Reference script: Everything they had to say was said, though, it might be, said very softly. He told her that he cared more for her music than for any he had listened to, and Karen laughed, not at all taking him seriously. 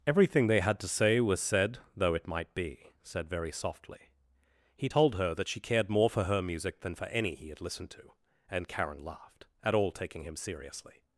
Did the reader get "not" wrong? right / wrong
wrong